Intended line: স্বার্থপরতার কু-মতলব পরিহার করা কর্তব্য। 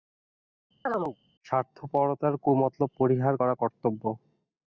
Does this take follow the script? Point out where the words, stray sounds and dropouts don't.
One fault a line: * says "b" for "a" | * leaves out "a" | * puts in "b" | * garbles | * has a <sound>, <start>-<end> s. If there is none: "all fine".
* has a chirp, 0.9-1.2 s